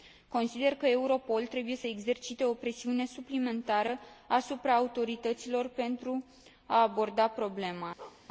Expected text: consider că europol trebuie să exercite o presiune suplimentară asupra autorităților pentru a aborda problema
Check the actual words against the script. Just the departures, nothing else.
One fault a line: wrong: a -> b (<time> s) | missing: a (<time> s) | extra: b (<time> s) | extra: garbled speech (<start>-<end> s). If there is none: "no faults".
no faults